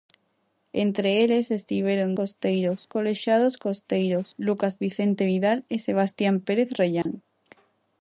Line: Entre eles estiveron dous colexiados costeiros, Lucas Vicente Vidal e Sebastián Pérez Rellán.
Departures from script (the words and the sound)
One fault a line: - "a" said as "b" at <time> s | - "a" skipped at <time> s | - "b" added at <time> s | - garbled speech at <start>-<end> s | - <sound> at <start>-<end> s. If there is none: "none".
- "dous" said as "costeiros" at 2.2 s
- dropout at 7.0-7.1 s